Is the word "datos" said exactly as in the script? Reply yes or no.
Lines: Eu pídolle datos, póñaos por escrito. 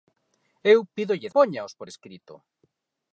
no